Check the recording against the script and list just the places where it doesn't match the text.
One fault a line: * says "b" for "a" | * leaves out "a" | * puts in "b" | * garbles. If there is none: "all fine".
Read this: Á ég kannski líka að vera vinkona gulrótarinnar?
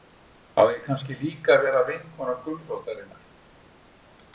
all fine